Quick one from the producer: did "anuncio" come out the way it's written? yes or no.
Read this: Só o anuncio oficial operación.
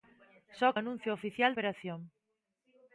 yes